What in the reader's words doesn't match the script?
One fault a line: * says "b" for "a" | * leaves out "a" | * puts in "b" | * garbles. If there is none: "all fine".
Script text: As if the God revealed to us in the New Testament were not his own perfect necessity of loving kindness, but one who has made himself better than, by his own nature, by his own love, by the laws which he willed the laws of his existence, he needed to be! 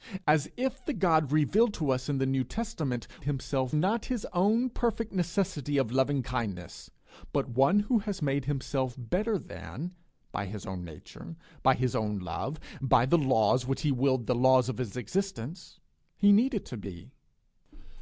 * says "himself" for "were"